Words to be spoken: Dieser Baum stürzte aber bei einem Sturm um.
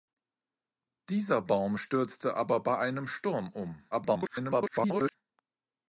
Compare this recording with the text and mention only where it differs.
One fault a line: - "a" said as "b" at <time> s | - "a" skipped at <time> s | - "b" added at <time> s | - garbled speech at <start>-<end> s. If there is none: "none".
- garbled speech at 3.9-5.2 s